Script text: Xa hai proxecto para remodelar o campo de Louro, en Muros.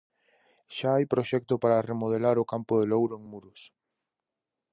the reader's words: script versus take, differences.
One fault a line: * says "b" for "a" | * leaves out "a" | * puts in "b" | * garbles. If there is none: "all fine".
all fine